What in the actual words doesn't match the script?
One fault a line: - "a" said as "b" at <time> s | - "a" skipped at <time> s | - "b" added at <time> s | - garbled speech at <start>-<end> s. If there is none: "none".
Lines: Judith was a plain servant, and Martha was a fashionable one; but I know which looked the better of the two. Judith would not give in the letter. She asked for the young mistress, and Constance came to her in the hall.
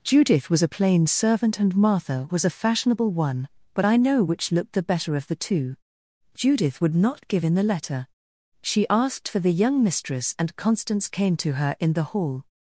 none